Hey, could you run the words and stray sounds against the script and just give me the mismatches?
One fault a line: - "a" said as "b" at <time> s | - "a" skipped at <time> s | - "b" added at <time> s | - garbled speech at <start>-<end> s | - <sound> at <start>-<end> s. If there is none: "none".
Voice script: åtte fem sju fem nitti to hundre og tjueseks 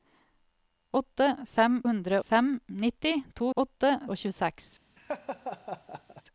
- "sju" said as "hundre" at 1.9 s
- "hundre" said as "åtte" at 3.5 s
- laugh at 5.0-6.2 s